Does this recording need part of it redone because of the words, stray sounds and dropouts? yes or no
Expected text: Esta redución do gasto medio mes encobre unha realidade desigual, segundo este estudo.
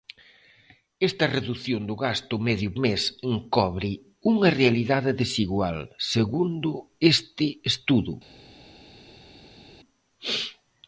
no